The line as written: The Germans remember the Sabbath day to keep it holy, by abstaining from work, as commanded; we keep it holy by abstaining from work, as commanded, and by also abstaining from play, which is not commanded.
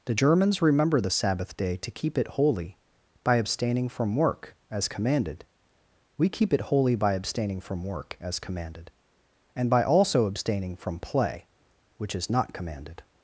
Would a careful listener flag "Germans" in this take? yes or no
no